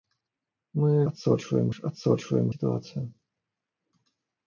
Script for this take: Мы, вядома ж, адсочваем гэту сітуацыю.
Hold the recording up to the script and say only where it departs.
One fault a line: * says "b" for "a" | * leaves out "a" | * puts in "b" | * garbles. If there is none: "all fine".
* says "адсочваем" for "вядома"
* leaves out "гэту"